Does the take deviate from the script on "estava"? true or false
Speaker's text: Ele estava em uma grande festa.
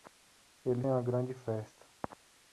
true